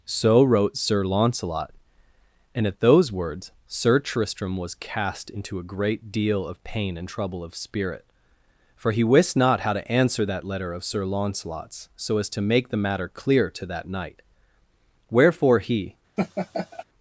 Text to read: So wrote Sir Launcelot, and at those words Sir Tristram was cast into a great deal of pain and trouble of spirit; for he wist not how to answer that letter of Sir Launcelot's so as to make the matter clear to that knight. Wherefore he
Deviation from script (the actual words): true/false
false